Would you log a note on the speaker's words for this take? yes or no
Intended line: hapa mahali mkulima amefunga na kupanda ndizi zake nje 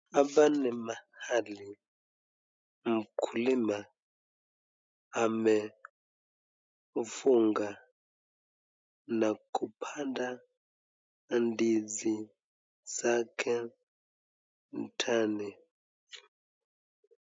yes